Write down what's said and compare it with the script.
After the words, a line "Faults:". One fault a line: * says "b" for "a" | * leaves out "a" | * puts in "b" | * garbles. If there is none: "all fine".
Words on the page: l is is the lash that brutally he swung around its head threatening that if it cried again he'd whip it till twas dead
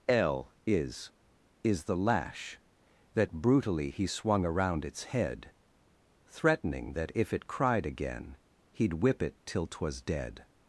l is is the lash that brutally he swung around its head threatening that if it cried again he'd whip it till twas dead
Faults:
all fine